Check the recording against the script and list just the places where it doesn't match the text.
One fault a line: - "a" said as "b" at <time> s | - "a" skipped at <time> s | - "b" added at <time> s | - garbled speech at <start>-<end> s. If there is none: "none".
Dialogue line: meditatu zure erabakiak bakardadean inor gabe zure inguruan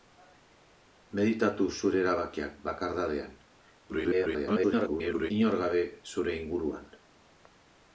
- garbled speech at 3.9-5.3 s